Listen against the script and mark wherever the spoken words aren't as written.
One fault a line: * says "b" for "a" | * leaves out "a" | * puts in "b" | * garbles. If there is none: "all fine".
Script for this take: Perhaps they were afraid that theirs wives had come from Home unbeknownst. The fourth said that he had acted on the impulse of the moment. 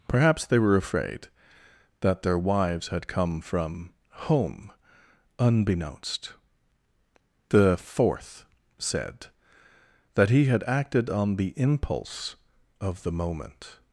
* says "their" for "theirs"